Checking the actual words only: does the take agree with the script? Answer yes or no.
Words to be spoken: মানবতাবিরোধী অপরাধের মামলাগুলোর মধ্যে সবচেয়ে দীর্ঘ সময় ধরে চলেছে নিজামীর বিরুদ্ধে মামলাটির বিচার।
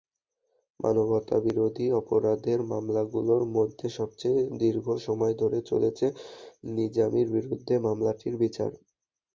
yes